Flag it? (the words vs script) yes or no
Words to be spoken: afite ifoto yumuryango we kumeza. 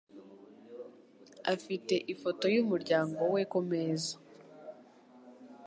no